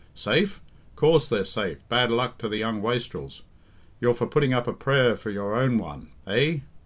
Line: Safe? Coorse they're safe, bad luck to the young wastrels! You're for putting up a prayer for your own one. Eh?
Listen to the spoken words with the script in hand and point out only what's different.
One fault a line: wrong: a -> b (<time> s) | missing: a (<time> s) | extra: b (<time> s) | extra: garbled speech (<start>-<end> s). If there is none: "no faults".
no faults